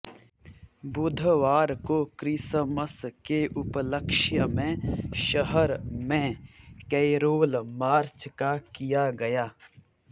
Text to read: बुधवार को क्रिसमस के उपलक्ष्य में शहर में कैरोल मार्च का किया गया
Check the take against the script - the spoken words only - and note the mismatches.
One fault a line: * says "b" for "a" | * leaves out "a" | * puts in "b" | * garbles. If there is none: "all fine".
all fine